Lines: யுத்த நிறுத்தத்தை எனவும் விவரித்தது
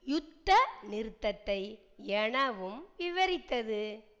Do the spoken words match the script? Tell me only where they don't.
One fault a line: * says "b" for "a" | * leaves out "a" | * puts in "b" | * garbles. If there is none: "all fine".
all fine